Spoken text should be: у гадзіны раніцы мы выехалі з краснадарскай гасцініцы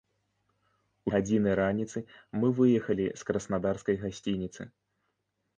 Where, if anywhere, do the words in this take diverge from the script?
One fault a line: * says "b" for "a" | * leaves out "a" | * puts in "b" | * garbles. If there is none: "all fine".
all fine